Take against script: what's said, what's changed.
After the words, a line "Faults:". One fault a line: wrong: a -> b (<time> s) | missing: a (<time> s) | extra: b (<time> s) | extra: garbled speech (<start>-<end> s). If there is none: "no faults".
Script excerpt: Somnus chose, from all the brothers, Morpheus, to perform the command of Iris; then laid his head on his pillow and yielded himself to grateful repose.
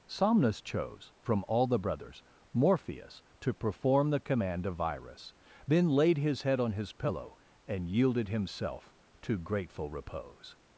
Somnus chose, from all the brothers, Morpheus, to perform the command of Iris; then laid his head on his pillow and yielded himself to grateful repose.
Faults:
no faults